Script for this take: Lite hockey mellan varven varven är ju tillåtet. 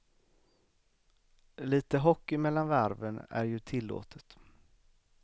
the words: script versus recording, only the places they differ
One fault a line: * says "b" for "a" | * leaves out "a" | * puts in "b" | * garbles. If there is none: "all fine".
* leaves out "varven"